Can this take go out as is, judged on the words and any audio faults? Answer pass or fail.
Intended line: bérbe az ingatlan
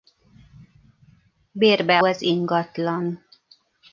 pass